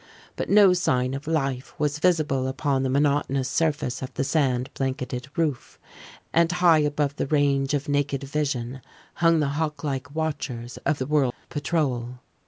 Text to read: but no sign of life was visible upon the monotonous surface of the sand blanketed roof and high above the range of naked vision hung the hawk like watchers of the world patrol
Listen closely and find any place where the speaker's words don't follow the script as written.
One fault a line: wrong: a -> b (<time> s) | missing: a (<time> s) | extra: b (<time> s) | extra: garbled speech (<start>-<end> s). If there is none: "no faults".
no faults